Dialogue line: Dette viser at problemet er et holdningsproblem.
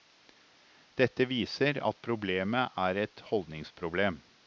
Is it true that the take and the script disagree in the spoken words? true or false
false